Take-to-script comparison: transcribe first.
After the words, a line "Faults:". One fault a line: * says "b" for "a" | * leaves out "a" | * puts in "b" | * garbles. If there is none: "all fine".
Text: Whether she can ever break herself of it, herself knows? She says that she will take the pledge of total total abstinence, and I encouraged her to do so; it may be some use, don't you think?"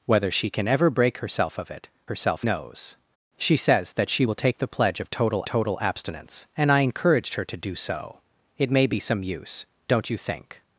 Whether she can ever break herself of it, herself knows? She says that she will take the pledge of total total abstinence, and I encouraged her to do so; it may be some use, don't you think?"
Faults:
all fine